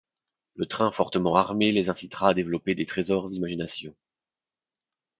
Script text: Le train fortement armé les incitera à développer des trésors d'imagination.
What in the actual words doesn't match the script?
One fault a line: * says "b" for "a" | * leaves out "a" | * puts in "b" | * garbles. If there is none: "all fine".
all fine